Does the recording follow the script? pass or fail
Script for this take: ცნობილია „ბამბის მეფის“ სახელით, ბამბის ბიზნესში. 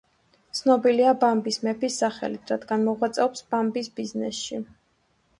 fail